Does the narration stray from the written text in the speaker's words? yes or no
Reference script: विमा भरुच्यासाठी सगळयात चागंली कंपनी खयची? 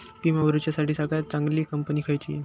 no